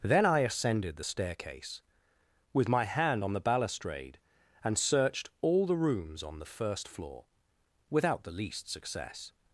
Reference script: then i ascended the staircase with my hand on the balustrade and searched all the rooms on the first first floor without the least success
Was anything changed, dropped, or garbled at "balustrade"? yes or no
no